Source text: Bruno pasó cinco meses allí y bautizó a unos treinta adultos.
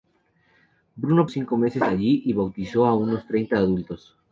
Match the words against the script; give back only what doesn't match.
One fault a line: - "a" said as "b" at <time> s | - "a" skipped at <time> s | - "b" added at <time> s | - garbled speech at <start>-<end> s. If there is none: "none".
- "pasó" skipped at 1.3 s